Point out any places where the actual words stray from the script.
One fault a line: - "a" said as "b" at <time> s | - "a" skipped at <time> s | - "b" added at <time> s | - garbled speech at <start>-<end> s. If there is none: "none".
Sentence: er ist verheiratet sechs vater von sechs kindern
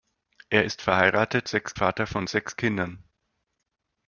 none